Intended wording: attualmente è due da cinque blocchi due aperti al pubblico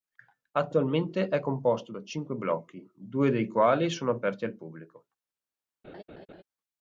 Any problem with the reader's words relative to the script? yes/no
yes